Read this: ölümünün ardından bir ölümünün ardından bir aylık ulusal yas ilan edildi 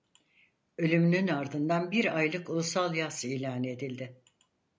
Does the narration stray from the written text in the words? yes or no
yes